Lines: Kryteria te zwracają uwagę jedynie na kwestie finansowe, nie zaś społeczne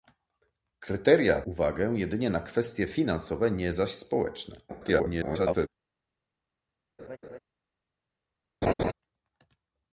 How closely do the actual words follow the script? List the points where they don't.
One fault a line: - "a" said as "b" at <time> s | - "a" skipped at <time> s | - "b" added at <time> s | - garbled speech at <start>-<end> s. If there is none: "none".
- "te zwracają" skipped at 1.4 s
- garbled speech at 4.7-5.7 s